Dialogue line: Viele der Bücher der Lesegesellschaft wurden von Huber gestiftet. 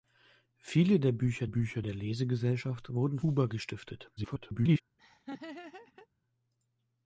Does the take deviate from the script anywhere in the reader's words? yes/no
yes